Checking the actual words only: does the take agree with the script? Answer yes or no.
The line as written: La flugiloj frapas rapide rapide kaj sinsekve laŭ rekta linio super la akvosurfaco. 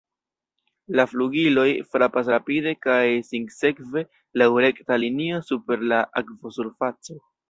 no